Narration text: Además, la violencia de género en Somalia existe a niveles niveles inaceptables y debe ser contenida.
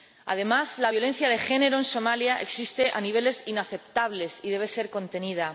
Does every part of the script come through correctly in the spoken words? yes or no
no